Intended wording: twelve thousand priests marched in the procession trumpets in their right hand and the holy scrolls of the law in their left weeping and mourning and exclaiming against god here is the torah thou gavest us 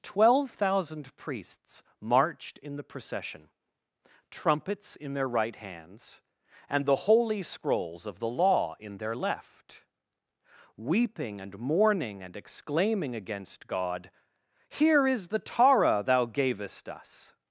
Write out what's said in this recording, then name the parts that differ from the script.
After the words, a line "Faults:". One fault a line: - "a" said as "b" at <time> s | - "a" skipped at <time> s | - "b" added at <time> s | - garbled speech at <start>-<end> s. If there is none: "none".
twelve thousand priests marched in the procession trumpets in their right hands and the holy scrolls of the law in their left weeping and mourning and exclaiming against god here is the torah thou gavest us
Faults:
- "hand" said as "hands" at 5.5 s